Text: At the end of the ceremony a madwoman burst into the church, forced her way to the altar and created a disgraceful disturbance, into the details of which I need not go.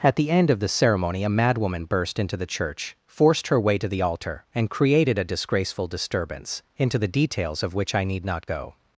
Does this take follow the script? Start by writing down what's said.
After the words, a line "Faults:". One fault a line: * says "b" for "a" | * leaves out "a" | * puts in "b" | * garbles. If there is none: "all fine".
At the end of the ceremony a madwoman burst into the church, forced her way to the altar and created a disgraceful disturbance, into the details of which I need not go.
Faults:
all fine